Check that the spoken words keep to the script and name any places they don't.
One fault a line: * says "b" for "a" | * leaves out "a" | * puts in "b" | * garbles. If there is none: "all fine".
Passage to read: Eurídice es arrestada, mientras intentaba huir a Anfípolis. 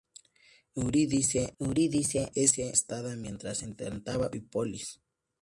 * puts in "eurídice"
* leaves out "huir a"